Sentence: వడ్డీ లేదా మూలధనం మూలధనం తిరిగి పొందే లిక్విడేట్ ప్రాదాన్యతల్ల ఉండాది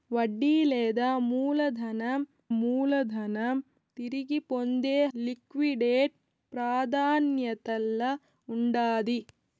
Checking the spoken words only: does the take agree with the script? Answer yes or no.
yes